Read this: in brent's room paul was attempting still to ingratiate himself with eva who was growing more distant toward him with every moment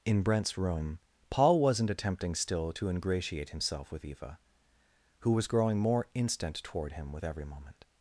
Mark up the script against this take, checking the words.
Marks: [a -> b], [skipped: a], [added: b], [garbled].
in brent's room paul [was -> wasn't] attempting still to ingratiate himself with eva who was growing more [distant -> instant] toward him with every moment